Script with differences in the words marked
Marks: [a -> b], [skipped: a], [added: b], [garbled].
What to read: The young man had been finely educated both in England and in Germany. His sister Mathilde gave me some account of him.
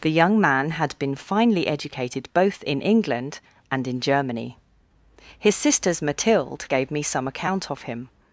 The young man had been finely educated both in England and in Germany. His [sister -> sisters] Mathilde gave me some account of him.